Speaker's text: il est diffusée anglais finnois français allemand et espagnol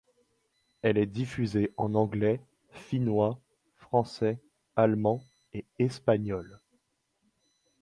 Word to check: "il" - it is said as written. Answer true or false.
false